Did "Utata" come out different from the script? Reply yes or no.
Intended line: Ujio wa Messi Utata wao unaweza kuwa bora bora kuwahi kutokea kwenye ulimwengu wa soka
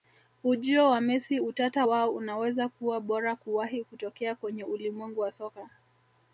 no